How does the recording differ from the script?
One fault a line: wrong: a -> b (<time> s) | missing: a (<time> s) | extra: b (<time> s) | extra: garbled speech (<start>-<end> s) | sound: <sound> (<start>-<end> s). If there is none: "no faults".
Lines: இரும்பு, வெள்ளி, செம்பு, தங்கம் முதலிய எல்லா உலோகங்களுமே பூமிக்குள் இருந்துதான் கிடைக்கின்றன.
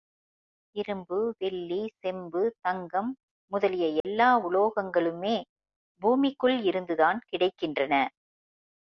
sound: dropout (4.0-4.0 s)